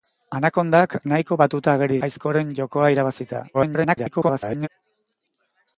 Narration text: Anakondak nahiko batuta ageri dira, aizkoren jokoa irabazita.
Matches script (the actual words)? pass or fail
fail